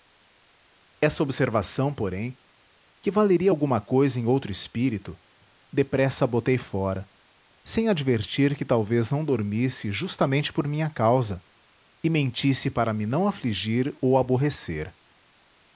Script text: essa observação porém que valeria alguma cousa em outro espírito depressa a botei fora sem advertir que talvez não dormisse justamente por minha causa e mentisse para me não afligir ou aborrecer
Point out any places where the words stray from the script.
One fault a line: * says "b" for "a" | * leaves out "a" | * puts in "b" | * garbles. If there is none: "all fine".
all fine